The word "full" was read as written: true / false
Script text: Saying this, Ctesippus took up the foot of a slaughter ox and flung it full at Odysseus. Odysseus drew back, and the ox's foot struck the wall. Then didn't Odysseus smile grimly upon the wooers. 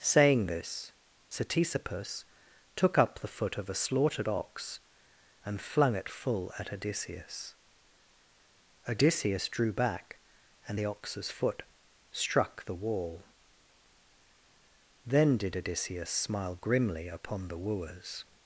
true